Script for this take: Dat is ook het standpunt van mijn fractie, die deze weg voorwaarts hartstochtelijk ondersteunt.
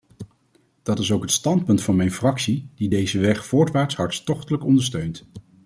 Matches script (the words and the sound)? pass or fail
pass